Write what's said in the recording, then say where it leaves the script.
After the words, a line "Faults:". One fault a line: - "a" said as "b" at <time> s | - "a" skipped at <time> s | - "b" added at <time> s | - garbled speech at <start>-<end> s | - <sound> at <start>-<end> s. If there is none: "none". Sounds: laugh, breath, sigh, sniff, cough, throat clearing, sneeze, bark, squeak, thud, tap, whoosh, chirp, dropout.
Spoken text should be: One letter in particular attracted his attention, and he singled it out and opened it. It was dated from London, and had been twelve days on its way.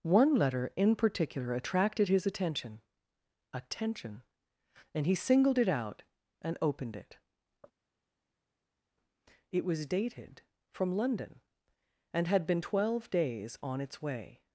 One letter in particular attracted his attention attention, and he singled it out and opened it. It was dated from London, and had been twelve days on its way.
Faults:
- "attention" added at 3.5 s